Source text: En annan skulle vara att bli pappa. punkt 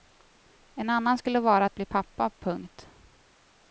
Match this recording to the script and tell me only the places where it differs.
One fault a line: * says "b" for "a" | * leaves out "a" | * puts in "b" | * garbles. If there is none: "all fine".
all fine